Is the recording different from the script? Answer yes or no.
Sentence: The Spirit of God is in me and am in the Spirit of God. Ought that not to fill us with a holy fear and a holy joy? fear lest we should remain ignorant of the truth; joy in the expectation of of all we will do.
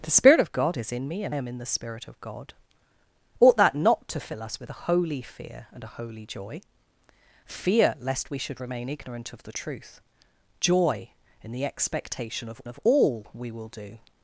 no